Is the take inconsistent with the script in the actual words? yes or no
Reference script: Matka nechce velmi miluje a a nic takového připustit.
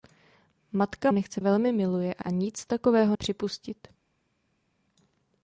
no